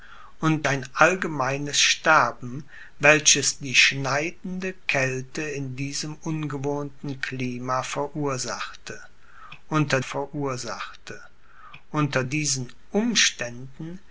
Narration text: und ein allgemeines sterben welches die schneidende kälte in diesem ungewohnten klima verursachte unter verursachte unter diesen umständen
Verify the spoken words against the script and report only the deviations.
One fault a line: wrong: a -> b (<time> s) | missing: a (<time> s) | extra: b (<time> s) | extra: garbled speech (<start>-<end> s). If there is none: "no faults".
no faults